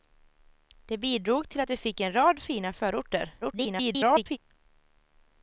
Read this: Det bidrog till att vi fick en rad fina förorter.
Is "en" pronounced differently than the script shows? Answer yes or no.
no